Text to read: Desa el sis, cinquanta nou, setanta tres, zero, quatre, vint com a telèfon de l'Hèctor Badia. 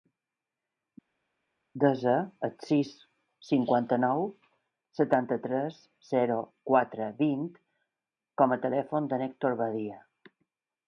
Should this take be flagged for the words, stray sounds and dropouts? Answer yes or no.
no